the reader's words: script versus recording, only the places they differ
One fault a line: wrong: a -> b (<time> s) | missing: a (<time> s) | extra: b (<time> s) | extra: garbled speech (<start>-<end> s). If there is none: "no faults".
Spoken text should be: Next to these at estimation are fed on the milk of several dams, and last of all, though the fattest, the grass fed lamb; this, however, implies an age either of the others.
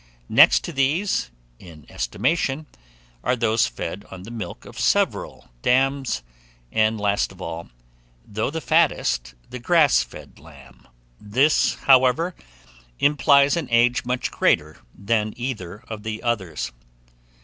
wrong: at -> in (1.6 s)
extra: those (3.4 s)
extra: much greater than (14.0 s)